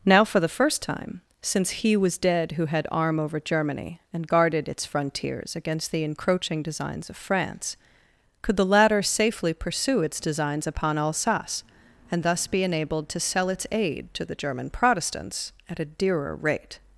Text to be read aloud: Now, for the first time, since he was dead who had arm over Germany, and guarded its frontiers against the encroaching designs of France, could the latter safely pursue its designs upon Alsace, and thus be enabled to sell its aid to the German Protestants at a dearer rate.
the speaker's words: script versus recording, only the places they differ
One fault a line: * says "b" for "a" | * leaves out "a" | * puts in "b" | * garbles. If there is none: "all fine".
all fine